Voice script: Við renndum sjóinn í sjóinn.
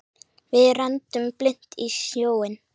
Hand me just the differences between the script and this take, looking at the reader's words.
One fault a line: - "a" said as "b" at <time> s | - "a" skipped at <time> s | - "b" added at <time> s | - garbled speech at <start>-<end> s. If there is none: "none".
- "sjóinn" said as "blint" at 1.4 s